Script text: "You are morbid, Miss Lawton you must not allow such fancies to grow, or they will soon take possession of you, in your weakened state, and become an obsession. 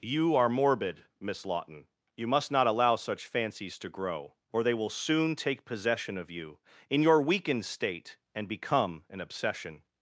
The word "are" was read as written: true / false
true